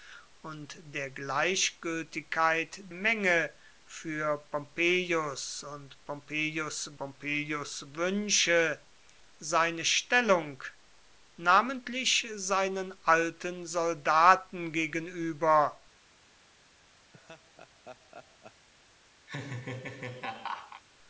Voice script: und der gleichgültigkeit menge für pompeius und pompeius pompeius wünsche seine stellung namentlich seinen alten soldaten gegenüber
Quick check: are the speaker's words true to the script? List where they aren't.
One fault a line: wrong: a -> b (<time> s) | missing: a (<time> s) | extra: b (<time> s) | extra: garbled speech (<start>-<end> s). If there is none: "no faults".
no faults